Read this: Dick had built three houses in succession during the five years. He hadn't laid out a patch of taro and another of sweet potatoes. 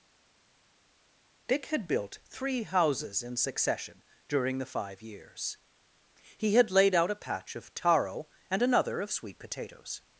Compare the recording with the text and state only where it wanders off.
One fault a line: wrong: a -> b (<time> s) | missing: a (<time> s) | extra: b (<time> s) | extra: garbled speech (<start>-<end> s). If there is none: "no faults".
wrong: hadn't -> had (6.6 s)